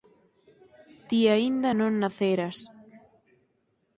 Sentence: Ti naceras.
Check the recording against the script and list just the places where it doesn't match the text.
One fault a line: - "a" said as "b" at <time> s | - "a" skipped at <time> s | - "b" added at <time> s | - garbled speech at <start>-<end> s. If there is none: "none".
- "aínda non" added at 1.4 s